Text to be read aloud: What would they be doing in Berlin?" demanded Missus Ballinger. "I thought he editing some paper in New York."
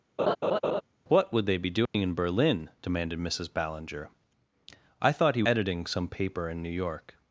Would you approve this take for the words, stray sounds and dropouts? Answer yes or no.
no